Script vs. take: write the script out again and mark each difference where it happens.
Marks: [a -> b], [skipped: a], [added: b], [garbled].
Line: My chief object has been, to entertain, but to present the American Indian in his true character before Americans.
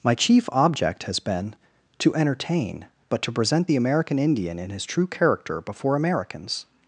My chief object has been, to entertain, but to present the American Indian in his true character before Americans.